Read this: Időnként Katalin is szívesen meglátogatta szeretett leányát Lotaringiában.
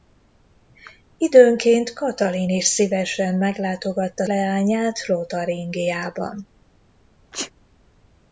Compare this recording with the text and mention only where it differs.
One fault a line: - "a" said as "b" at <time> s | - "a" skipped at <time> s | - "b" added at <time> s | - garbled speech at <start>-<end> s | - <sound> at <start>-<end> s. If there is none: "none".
- "szeretett" skipped at 4.3 s
- sneeze at 7.3-7.5 s